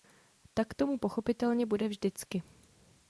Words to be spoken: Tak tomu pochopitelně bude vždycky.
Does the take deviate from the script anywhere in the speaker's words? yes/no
no